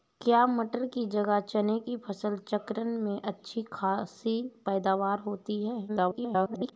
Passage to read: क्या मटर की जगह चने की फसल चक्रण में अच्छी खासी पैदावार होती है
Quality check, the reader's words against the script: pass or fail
fail